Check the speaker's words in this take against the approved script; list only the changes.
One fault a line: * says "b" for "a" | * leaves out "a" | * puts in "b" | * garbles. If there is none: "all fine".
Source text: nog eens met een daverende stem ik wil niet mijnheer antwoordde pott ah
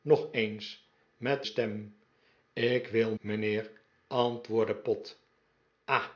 * leaves out "een daverende"
* leaves out "niet"